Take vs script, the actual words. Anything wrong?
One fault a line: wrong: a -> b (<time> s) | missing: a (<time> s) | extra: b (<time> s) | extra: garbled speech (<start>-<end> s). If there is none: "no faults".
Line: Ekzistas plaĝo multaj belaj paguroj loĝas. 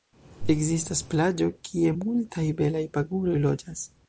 extra: kie (1.7 s)